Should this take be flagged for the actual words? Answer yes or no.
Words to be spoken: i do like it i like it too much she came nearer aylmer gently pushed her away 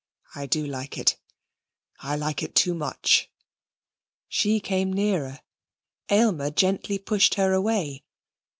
no